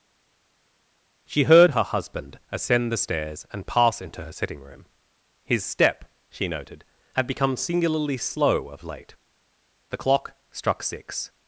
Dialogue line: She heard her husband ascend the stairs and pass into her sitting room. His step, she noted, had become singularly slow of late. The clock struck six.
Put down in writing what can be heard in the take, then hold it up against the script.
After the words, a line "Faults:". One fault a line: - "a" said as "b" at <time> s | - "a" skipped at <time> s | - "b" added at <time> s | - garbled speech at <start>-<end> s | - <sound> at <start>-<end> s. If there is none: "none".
She heard her husband ascend the stairs and pass into her sitting room. His step, she noted, had become singularly slow of late. The clock struck six.
Faults:
none